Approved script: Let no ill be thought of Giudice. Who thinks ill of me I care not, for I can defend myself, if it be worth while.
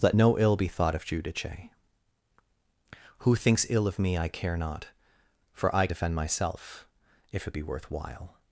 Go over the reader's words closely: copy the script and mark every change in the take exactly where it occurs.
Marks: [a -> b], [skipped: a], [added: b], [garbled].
Let no ill be thought of Giudice. Who thinks ill of me I care not, for I [skipped: can] defend myself, if it be worth while.